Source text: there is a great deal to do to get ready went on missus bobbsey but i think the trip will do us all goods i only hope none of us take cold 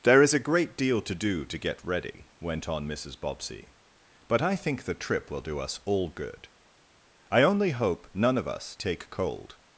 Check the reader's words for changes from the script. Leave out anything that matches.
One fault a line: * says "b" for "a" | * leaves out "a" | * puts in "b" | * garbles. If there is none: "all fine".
* says "good" for "goods"